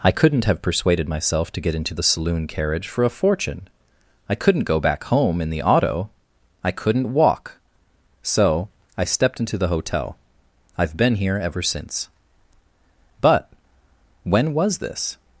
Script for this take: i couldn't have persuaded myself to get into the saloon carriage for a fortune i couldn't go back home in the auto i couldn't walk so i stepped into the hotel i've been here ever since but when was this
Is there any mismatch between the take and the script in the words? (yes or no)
no